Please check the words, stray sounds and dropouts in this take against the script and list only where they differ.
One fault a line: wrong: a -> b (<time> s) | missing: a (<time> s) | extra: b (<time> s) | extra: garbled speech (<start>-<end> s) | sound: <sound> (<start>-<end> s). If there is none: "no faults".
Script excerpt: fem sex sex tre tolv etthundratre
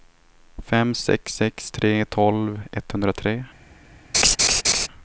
sound: laugh (4.1-4.9 s)